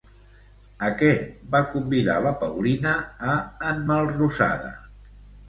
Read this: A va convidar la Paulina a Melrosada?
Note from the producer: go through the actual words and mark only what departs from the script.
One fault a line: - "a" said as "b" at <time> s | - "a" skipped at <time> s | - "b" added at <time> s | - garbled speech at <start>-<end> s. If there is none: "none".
- "què" added at 1.0 s
- "en" added at 3.8 s